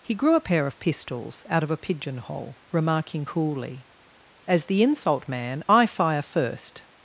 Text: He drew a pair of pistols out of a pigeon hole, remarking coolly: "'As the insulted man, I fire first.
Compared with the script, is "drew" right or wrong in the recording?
wrong